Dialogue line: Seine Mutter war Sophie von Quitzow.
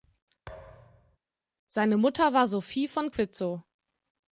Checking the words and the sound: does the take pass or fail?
fail